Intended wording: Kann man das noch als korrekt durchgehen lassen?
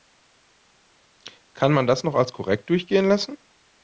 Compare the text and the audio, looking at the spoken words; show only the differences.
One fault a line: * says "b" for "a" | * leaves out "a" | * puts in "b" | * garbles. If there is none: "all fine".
all fine